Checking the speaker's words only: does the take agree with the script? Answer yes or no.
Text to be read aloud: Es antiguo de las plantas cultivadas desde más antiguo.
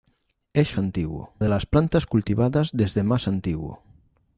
yes